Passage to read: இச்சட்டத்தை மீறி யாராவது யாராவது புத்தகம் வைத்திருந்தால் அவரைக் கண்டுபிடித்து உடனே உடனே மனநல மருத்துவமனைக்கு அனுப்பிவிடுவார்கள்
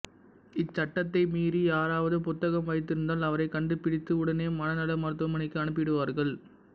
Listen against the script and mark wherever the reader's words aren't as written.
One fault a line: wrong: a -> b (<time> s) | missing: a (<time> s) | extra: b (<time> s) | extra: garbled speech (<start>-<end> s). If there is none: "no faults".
missing: யாராவது (2.2 s)
missing: உடனே (4.5 s)